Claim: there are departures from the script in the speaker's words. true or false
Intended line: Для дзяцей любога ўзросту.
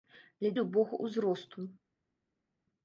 true